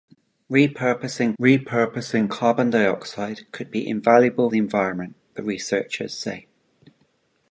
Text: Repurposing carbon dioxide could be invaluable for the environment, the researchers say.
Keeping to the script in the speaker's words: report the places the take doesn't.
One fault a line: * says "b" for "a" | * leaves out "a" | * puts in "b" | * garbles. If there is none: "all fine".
* puts in "repurposing"
* leaves out "for"